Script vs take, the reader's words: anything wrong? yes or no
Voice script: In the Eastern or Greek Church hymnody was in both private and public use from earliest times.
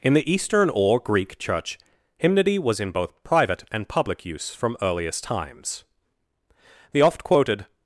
yes